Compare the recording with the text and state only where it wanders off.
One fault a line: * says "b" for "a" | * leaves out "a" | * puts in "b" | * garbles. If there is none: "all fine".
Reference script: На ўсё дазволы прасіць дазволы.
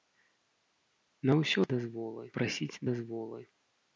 all fine